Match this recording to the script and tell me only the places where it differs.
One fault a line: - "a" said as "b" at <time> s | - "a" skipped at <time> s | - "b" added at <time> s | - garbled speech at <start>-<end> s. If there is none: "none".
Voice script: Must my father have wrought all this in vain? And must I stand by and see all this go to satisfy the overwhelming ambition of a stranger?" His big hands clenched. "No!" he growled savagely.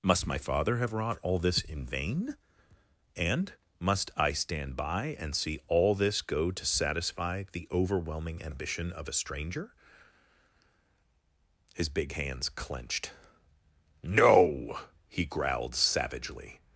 none